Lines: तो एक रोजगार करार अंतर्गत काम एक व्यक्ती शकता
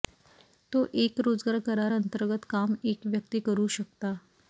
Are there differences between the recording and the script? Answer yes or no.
yes